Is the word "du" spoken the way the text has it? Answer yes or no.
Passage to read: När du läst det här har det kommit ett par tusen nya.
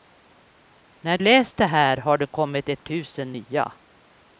no